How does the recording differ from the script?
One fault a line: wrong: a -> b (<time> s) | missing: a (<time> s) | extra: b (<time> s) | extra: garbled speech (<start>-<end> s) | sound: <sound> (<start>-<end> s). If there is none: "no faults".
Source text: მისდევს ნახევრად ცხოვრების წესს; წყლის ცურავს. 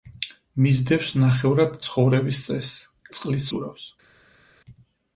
no faults